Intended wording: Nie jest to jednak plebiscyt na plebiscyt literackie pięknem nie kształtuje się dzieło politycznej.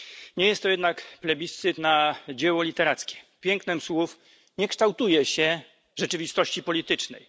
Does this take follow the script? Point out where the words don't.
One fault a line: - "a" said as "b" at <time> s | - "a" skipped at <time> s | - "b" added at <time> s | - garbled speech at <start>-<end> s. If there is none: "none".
- "plebiscyt" said as "dzieło" at 2.3 s
- "słów" added at 3.8 s
- "dzieło" said as "rzeczywistości" at 6.0 s